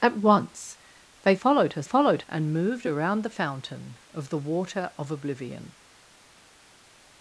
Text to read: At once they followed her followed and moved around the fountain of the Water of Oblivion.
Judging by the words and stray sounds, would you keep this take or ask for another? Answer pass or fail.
pass